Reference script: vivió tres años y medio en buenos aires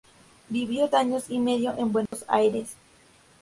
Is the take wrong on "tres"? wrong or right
wrong